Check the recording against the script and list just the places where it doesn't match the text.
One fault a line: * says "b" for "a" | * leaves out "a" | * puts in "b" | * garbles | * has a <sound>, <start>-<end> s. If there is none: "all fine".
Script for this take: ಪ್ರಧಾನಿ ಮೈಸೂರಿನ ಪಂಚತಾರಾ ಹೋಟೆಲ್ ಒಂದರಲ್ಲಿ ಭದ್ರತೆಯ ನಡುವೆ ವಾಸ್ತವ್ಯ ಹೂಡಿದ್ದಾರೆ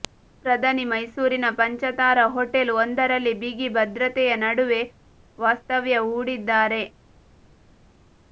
* puts in "ಬಿಗಿ"